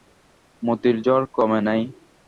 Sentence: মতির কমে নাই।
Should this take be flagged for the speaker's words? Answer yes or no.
yes